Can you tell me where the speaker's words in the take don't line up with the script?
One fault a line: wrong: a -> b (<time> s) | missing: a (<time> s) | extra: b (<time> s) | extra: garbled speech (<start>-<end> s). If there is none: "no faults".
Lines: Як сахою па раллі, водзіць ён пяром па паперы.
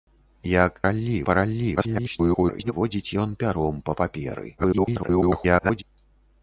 wrong: сахою -> раллі (0.9 s)
extra: garbled speech (1.8-2.7 s)
extra: garbled speech (4.6-5.8 s)